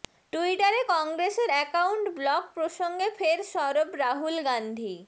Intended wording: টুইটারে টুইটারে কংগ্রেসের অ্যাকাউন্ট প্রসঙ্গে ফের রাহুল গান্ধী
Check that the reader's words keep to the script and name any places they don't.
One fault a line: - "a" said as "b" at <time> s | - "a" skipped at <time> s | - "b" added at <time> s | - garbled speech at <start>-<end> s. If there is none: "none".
- "টুইটারে" skipped at 0.8 s
- "ব্লক" added at 2.2 s
- "সরব" added at 3.5 s